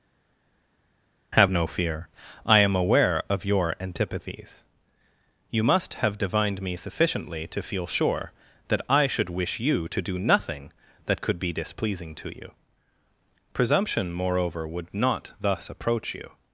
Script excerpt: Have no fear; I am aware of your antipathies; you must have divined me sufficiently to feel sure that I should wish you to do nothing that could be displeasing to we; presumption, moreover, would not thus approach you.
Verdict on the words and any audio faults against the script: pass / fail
fail